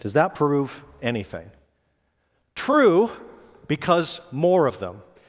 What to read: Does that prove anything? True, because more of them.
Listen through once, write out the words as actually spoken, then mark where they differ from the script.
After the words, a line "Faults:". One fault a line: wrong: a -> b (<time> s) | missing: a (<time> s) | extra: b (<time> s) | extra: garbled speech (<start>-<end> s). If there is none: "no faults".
Does that prove anything? True, because more of them.
Faults:
no faults